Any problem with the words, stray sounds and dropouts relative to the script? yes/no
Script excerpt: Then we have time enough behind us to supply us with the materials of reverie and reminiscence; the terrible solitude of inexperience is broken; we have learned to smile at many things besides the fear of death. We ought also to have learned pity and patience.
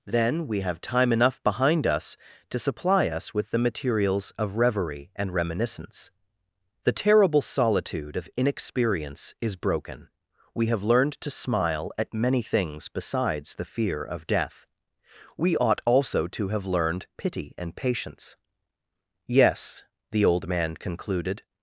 yes